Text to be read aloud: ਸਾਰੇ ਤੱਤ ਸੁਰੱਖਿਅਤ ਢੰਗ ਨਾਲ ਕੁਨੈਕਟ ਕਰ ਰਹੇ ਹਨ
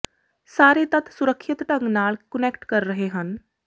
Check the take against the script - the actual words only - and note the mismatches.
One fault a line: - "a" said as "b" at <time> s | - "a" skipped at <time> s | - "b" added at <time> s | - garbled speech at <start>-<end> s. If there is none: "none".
none